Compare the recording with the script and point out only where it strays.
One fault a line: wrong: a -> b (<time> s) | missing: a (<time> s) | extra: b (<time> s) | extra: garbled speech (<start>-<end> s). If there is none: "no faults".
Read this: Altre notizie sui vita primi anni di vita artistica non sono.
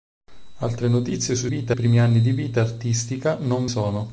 no faults